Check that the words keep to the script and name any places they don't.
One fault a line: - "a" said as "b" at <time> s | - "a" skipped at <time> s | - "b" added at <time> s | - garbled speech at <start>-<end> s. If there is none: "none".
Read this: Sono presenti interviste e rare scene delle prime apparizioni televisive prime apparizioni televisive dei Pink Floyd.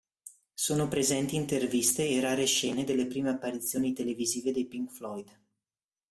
- "prime apparizioni televisive" skipped at 4.5 s